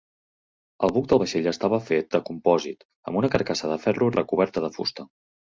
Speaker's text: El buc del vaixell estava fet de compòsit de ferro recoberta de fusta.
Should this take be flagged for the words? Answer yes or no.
yes